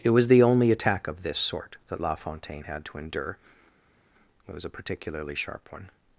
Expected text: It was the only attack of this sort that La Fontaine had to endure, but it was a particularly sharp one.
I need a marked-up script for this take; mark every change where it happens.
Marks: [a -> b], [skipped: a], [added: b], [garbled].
It was the only attack of this sort that La Fontaine had to endure, [skipped: but] it was a particularly sharp one.